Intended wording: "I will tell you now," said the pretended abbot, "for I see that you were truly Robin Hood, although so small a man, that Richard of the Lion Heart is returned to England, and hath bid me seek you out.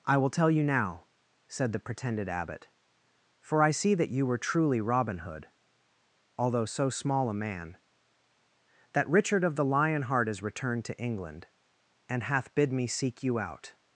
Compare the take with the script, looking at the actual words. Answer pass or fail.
pass